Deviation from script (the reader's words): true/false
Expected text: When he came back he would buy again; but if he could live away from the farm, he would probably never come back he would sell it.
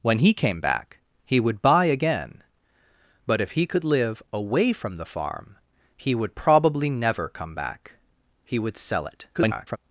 true